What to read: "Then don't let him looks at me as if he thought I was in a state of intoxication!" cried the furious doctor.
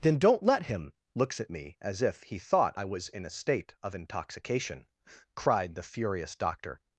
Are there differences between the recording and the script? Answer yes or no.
no